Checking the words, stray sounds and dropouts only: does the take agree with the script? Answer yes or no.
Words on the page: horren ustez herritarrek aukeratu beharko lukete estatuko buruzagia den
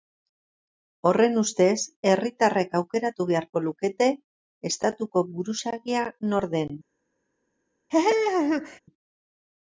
no